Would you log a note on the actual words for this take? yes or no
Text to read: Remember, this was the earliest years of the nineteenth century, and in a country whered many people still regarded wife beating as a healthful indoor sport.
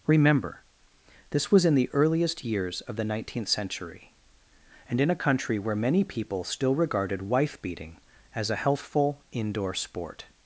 yes